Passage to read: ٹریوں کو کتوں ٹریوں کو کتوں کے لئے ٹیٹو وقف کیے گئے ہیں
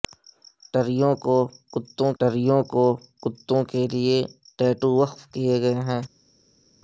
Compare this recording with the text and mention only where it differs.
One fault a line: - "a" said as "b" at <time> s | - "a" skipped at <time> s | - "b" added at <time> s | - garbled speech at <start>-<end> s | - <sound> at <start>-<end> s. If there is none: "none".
none